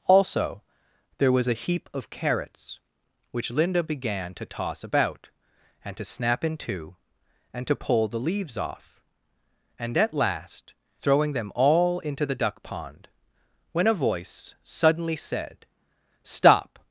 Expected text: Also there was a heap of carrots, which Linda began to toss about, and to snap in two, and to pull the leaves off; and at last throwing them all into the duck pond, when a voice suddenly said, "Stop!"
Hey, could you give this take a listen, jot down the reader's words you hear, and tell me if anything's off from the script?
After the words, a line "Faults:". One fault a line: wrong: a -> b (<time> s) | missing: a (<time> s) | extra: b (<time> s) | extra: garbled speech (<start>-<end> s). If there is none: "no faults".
Also there was a heap of carrots, which Linda began to toss about, and to snap in two, and to pull the leaves off; and at last throwing them all into the duck pond, when a voice suddenly said, "Stop!"
Faults:
no faults